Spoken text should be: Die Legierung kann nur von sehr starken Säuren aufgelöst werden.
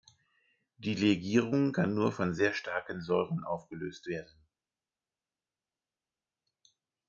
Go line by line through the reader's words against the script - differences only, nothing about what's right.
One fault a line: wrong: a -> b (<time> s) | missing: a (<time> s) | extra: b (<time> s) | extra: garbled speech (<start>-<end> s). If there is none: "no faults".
no faults